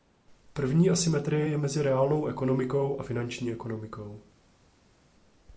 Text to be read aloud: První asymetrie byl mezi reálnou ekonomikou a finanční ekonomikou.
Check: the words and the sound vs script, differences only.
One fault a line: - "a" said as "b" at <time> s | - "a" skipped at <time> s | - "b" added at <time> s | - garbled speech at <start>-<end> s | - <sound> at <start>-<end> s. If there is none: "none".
- "byl" said as "je" at 1.5 s